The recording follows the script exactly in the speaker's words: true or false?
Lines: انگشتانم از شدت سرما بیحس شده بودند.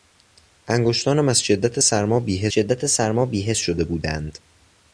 false